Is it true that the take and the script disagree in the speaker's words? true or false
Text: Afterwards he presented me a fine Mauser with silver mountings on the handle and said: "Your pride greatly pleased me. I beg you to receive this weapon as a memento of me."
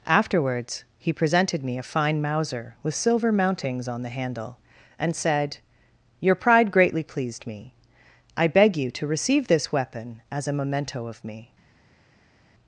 false